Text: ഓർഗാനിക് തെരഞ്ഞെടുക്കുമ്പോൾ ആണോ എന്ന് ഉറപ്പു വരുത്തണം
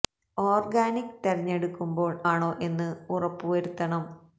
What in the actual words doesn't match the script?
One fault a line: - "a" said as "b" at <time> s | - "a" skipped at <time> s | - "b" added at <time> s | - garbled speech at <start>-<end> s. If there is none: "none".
none